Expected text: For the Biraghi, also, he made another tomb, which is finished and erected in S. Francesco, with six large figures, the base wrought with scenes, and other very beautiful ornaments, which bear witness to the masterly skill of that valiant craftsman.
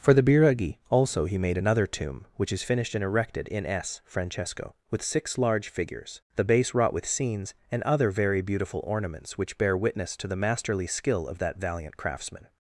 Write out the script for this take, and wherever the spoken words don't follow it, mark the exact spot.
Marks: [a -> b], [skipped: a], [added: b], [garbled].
For the Biraghi, also, he made another tomb, which is finished and erected in S. Francesco, with six large figures, the base wrought with scenes, and other very beautiful ornaments, which bear witness to the masterly skill of that valiant craftsman.